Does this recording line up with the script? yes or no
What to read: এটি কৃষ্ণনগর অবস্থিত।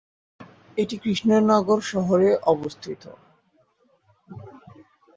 no